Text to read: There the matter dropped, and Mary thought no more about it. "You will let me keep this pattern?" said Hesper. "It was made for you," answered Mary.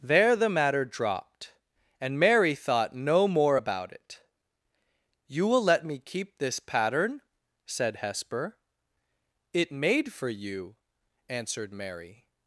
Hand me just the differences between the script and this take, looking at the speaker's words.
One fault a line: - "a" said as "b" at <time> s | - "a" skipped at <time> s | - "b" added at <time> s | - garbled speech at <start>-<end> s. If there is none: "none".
- "was" skipped at 9.7 s